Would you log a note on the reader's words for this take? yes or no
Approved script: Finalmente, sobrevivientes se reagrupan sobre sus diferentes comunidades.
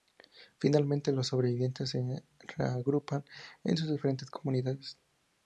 yes